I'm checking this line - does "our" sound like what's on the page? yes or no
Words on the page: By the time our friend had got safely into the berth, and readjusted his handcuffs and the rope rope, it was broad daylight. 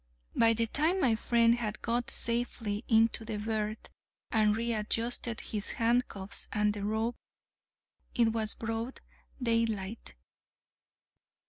no